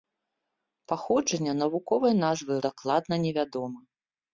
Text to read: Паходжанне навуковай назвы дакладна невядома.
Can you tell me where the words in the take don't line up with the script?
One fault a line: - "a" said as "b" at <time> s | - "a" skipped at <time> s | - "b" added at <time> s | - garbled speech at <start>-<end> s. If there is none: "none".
none